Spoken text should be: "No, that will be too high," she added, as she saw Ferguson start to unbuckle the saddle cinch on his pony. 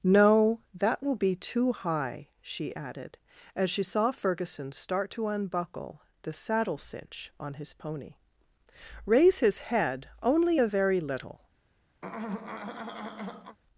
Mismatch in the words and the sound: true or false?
true